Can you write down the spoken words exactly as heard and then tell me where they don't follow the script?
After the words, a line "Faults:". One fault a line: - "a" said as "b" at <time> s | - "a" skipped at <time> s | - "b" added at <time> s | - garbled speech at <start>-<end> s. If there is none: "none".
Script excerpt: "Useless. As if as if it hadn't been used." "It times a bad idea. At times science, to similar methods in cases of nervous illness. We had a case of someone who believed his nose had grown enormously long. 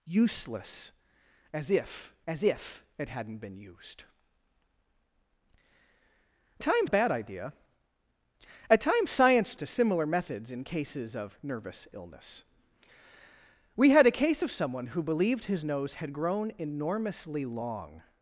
"Useless. As if as if it hadn't been used." "It times a bad idea. At times science, to similar methods in cases of nervous illness. We had a case of someone who believed his nose had grown enormously long.
Faults:
none